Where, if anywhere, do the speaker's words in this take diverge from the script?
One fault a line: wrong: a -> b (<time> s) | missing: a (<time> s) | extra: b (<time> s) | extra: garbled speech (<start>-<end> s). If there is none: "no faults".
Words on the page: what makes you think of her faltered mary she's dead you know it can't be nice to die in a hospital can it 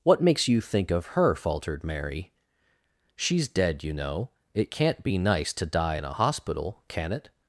no faults